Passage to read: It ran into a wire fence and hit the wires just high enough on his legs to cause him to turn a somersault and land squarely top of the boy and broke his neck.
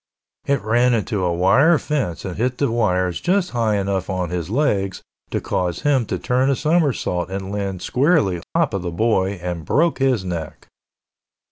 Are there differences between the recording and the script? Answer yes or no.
no